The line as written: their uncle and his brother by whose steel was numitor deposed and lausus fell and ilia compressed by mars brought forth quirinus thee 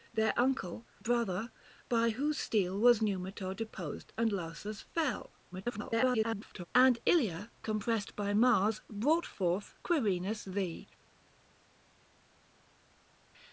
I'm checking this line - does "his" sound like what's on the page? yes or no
no